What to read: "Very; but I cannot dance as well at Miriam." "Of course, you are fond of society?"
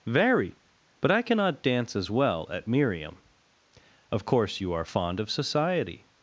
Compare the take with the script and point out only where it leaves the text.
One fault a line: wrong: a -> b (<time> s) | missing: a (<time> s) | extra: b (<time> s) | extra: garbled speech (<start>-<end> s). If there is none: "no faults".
no faults